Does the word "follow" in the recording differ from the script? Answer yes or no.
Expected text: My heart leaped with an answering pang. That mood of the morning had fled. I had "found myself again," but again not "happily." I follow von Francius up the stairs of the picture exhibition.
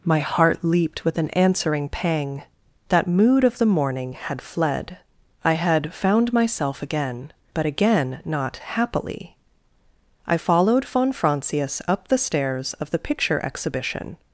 yes